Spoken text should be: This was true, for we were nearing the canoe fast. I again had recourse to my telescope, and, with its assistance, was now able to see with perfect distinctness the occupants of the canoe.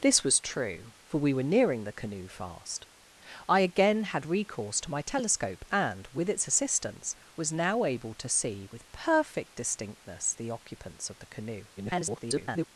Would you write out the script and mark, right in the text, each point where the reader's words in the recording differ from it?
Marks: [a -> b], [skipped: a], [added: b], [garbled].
This was true, for we were nearing the canoe fast. I again had recourse to my telescope, and, with its assistance, was now able to see with perfect distinctness the occupants of the canoe. [garbled]